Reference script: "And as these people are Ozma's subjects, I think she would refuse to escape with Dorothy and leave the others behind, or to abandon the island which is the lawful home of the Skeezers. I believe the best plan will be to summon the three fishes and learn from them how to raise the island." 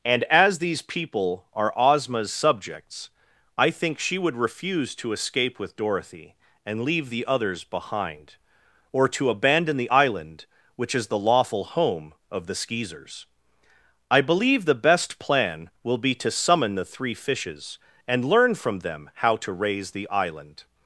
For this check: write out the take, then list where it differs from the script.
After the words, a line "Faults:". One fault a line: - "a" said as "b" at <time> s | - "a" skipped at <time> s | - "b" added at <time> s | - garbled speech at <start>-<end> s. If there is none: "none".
"And as these people are Ozma's subjects, I think she would refuse to escape with Dorothy and leave the others behind, or to abandon the island which is the lawful home of the Skeezers. I believe the best plan will be to summon the three fishes and learn from them how to raise the island."
Faults:
none